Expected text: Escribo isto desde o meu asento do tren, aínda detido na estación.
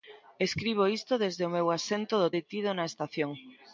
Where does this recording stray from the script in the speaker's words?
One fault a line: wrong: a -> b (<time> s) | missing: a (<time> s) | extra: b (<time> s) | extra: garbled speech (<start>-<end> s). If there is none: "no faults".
missing: tren aínda (2.3 s)